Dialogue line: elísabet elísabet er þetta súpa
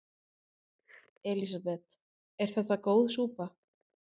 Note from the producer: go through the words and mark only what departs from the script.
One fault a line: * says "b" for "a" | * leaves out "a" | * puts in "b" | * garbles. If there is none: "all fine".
* leaves out "elísabet"
* puts in "góð"